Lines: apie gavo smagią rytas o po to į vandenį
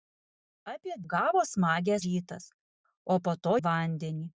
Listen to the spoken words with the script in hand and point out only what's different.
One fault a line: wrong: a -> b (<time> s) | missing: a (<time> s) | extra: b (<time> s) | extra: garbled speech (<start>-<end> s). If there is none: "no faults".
no faults